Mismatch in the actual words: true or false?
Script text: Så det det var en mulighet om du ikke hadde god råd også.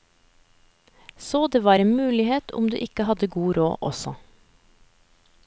true